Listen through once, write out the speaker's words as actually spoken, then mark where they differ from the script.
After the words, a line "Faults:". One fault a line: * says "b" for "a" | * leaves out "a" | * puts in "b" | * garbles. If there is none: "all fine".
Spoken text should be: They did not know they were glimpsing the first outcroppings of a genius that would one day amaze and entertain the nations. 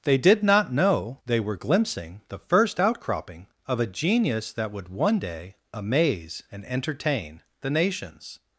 They did not know they were glimpsing the first outcropping of a genius that would one day amaze and entertain the nations.
Faults:
* says "outcropping" for "outcroppings"